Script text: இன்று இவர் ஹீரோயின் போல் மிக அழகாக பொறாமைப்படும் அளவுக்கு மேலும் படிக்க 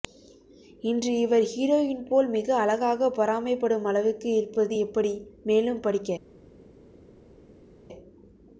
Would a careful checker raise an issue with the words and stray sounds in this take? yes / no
yes